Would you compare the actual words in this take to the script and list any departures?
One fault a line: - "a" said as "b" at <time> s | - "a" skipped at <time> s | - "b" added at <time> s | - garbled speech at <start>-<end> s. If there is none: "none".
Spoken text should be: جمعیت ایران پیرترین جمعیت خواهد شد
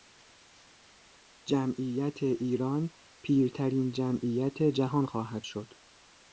- "جهان" added at 4.6 s